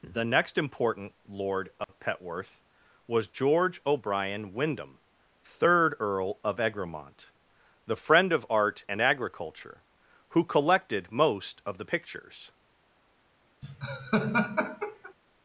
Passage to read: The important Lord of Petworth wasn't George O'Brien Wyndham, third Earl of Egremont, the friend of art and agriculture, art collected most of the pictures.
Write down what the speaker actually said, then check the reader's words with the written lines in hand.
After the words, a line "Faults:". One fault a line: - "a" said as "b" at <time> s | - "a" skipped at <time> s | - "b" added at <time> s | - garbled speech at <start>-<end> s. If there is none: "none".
The next important Lord of Petworth was George O'Brien Wyndham, third Earl of Egremont, the friend of art and agriculture, who collected most of the pictures.
Faults:
- "next" added at 0.2 s
- "wasn't" said as "was" at 3.0 s
- "art" said as "who" at 10.3 s